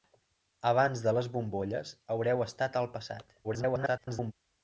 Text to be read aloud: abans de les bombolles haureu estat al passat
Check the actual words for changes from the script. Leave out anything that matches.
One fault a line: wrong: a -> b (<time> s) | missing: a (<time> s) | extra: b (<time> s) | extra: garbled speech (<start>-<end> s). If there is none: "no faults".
extra: garbled speech (3.4-4.3 s)